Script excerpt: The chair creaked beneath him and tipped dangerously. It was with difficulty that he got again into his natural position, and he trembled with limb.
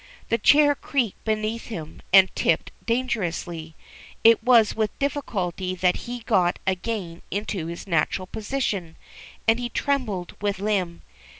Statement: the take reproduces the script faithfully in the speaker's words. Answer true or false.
true